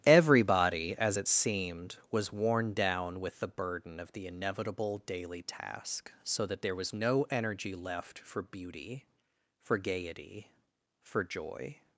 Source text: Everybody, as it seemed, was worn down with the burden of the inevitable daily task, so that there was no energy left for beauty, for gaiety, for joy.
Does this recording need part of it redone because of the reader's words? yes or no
no